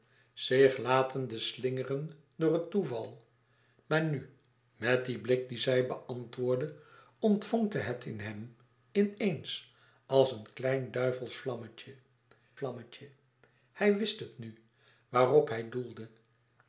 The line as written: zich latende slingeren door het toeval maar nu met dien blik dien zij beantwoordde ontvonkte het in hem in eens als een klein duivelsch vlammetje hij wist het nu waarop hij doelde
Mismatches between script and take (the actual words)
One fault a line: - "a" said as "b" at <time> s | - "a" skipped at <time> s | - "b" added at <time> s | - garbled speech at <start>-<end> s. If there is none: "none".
- "vlammetje" added at 12.5 s